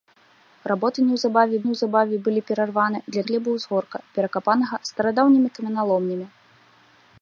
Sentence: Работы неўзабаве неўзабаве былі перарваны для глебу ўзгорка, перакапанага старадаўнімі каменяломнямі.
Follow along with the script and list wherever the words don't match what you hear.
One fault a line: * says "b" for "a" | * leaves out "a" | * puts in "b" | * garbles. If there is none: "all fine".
all fine